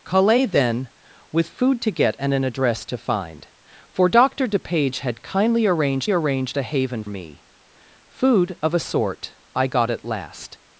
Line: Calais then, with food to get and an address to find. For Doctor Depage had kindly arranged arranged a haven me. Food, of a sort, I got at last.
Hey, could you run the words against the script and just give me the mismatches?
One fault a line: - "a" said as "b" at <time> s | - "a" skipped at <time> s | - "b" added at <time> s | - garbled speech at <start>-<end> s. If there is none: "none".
none